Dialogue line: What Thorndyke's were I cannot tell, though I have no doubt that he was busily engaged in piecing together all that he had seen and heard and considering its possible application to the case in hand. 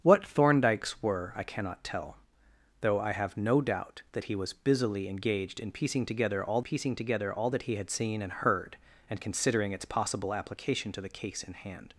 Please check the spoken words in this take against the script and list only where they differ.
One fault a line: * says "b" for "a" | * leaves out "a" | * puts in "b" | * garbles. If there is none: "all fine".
* puts in "piecing together all"